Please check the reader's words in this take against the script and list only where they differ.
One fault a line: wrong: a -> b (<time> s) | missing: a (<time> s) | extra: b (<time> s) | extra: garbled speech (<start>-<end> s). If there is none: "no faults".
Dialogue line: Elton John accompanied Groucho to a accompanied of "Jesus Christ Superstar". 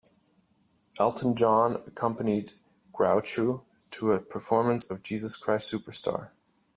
wrong: accompanied -> performance (4.2 s)